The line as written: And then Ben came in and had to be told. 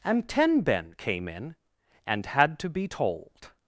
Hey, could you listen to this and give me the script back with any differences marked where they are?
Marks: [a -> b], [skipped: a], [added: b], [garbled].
And [then -> ten] Ben came in and had to be told.